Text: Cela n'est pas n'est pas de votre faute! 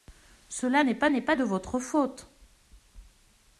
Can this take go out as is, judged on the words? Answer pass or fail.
pass